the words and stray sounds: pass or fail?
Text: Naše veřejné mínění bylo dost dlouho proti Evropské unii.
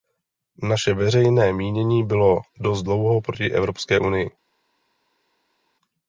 pass